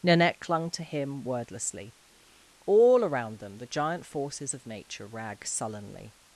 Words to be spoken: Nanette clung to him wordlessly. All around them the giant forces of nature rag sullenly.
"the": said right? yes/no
yes